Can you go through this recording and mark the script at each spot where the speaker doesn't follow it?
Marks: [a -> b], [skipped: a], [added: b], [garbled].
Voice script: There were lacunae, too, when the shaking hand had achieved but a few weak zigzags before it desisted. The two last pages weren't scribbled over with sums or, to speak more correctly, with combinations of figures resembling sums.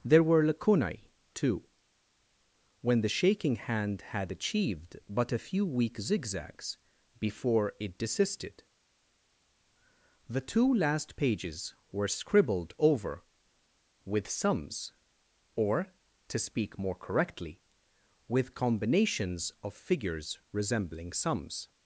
There were lacunae, too, when the shaking hand had achieved but a few weak zigzags before it desisted. The two last pages [weren't -> were] scribbled over with sums or, to speak more correctly, with combinations of figures resembling sums.